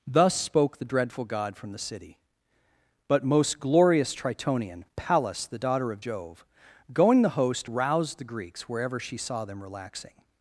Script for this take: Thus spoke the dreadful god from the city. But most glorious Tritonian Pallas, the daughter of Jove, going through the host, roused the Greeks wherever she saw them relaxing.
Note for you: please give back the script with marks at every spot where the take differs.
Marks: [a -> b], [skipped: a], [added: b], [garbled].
Thus spoke the dreadful god from the city. But most glorious Tritonian Pallas, the daughter of Jove, going [skipped: through] the host, roused the Greeks wherever she saw them relaxing.